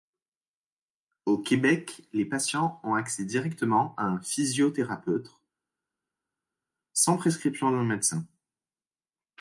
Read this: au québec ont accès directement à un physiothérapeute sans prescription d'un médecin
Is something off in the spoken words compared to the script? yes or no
yes